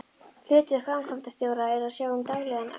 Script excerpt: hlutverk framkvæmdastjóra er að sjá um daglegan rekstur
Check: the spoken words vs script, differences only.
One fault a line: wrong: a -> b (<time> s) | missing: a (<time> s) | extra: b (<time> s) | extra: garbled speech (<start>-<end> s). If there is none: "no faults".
no faults